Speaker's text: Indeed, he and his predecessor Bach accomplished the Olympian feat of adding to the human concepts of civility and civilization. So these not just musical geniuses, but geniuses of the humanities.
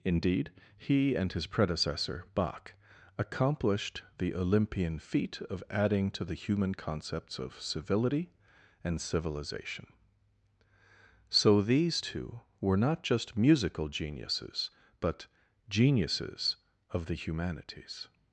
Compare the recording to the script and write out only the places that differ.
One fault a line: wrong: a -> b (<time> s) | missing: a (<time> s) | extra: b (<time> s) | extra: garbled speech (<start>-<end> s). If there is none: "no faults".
extra: two were (12.0 s)